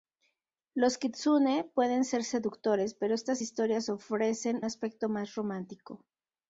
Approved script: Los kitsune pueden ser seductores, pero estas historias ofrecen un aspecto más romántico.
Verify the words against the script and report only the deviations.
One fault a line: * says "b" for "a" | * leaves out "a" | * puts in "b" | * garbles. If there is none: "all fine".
* leaves out "un"